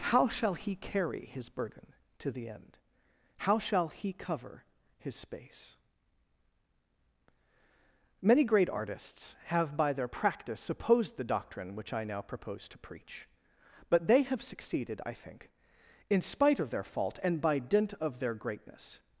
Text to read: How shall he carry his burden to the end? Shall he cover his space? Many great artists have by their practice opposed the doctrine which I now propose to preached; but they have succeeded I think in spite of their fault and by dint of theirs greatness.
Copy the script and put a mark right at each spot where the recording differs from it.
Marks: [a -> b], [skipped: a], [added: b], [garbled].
How shall he carry his burden to the end? [added: How] Shall he cover his space? Many great artists have by their practice opposed the doctrine which I now propose to [preached; -> preach] but they have succeeded I think in spite of their fault and by dint of [theirs -> their] greatness.